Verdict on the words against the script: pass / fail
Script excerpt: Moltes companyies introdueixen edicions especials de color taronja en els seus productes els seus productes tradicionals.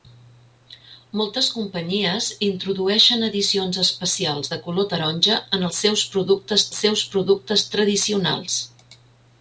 pass